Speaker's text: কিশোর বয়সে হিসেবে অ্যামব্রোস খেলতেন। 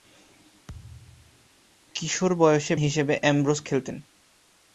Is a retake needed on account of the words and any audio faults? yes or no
yes